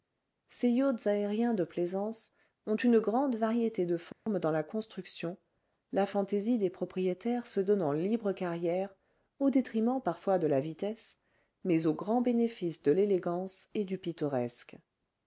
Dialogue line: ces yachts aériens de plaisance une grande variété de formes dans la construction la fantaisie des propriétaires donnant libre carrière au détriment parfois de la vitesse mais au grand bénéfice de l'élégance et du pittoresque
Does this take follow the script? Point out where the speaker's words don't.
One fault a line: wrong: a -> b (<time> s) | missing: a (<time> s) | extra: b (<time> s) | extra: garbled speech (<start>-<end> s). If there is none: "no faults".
extra: ont (2.6 s)
extra: se (7.5 s)